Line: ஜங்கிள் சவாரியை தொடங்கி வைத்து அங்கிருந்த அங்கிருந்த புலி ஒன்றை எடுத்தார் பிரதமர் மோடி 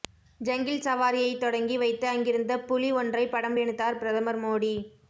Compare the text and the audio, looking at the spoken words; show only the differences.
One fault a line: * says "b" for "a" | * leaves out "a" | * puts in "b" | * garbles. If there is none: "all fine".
* leaves out "அங்கிருந்த"
* puts in "படம்"